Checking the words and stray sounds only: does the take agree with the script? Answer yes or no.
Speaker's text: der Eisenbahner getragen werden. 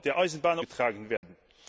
no